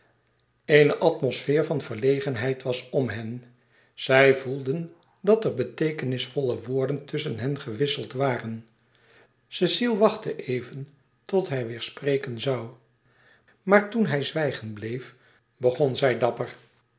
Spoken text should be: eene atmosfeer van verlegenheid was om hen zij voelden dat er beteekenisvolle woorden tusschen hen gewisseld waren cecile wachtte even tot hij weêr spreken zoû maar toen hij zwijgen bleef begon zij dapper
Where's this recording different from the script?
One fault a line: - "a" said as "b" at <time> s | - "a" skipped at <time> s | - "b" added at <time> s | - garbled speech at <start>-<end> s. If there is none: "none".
none